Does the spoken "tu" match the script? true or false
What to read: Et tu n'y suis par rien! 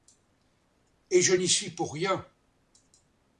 false